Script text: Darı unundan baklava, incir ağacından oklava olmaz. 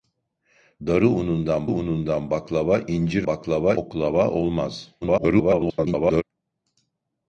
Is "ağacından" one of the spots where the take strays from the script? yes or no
yes